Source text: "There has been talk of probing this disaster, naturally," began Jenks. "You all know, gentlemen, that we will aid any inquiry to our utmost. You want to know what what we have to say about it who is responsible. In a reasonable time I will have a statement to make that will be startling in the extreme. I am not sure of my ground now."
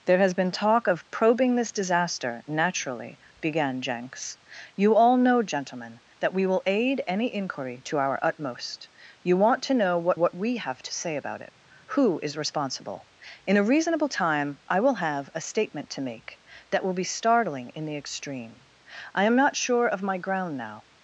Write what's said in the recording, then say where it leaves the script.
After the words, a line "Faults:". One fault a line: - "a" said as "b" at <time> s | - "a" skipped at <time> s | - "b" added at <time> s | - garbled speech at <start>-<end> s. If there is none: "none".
"There has been talk of probing this disaster, naturally," began Jenks. "You all know, gentlemen, that we will aid any inquiry to our utmost. You want to know what what we have to say about it who is responsible. In a reasonable time I will have a statement to make that will be startling in the extreme. I am not sure of my ground now."
Faults:
none